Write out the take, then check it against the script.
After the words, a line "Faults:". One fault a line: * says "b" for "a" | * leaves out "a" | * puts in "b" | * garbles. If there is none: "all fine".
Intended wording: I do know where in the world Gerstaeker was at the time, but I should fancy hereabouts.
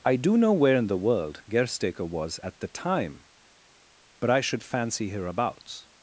I do know where in the world Gerstaeker was at the time, but I should fancy hereabouts.
Faults:
all fine